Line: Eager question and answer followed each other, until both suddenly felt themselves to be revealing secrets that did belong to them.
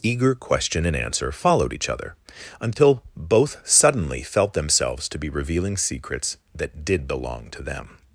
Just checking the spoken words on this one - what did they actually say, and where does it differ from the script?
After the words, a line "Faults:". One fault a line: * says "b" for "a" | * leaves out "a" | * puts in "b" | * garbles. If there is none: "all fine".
Eager question and answer followed each other, until both suddenly felt themselves to be revealing secrets that did belong to them.
Faults:
all fine